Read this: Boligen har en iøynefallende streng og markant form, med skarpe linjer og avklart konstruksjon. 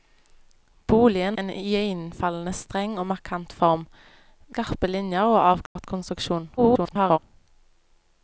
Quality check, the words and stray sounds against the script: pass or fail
fail